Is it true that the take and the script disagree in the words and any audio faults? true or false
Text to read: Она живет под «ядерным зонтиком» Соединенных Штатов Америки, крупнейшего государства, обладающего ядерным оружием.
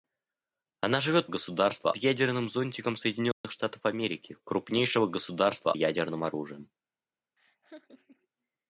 true